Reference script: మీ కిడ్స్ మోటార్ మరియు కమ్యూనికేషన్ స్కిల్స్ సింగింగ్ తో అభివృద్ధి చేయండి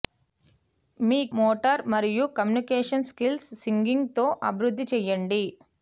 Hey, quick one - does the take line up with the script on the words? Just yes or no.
no